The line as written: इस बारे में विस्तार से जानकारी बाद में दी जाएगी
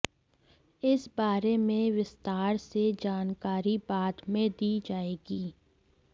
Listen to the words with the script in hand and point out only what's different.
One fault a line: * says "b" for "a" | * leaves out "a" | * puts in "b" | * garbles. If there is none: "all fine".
all fine